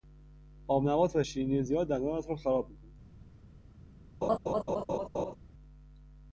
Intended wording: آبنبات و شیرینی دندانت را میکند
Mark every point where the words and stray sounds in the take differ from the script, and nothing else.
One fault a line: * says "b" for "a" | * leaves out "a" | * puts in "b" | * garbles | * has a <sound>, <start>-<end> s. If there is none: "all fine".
* puts in "زیاد"
* puts in "خراب"
* has a laugh, 4.2-5.4 s